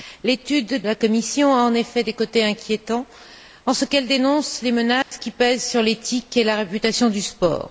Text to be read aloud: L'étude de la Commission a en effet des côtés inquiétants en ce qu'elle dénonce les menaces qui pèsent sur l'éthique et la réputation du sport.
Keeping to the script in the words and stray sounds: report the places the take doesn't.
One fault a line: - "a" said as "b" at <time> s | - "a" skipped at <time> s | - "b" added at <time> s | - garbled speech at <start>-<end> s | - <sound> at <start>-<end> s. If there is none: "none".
- "de" skipped at 0.8 s
- dropout at 5.0-5.1 s